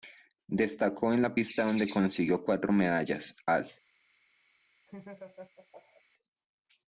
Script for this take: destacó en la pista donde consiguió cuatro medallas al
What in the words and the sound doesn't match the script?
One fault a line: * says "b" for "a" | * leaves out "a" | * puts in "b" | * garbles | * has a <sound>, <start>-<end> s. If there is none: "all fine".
* has a laugh, 4.9-6.0 s